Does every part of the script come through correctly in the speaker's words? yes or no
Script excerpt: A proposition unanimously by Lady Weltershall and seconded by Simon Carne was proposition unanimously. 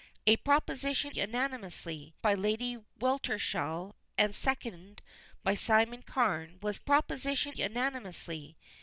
yes